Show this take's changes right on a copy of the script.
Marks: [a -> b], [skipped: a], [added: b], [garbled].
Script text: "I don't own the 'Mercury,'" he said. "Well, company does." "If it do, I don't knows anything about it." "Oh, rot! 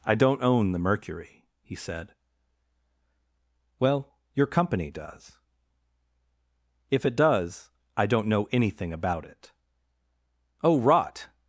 "I don't own the 'Mercury,'" he said. "Well, [added: your] company does." "If it [do, -> does] I don't [knows -> know] anything about it." "Oh, rot!